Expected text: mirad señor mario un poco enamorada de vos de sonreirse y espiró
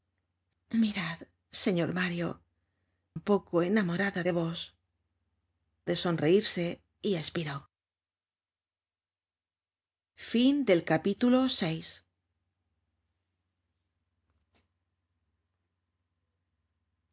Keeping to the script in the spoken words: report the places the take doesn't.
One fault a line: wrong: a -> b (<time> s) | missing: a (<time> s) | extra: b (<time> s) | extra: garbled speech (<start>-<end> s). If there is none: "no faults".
no faults